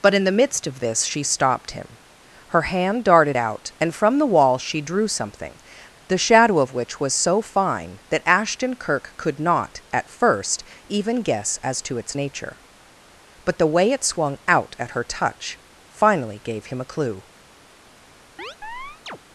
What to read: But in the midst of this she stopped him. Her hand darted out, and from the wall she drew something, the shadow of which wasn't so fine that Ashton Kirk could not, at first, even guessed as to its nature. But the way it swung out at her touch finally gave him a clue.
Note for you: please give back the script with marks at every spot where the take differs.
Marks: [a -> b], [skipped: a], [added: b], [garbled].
But in the midst of this she stopped him. Her hand darted out, and from the wall she drew something, the shadow of which [wasn't -> was] so fine that Ashton Kirk could not, at first, even [guessed -> guess] as to its nature. But the way it swung out at her touch finally gave him a clue.